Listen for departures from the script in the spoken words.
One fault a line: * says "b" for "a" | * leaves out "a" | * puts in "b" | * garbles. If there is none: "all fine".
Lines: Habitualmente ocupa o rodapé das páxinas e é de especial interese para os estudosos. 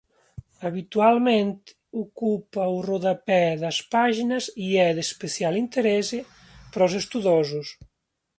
all fine